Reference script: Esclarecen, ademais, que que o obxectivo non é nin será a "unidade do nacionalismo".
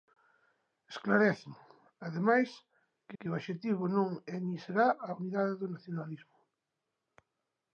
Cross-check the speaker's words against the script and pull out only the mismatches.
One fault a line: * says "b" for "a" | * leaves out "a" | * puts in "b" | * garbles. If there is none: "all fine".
all fine